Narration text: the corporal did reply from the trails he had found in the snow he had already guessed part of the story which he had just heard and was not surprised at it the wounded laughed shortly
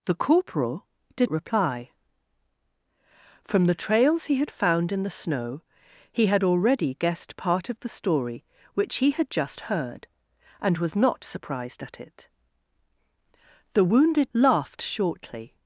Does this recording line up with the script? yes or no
yes